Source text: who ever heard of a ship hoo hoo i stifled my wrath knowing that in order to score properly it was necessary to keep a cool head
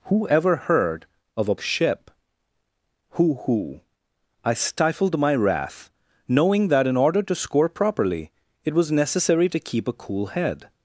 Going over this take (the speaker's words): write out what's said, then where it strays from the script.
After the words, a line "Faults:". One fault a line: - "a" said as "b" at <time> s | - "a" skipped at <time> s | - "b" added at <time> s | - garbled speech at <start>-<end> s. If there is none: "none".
who ever heard of a ship hoo hoo i stifled my wrath knowing that in order to score properly it was necessary to keep a cool head
Faults:
none